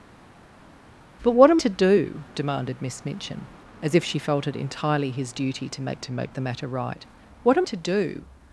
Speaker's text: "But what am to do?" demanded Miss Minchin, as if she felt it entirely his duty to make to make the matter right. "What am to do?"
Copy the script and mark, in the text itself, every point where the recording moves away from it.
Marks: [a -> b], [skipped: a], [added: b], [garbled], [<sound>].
"But what am to do?" demanded Miss Minchin, as if she felt it entirely his duty to make to make the matter right. "What am to do?"